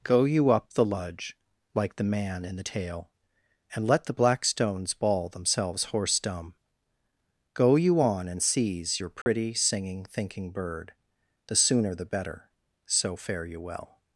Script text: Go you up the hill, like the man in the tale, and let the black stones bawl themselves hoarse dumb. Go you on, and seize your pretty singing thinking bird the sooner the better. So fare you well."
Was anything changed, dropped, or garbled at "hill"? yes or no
yes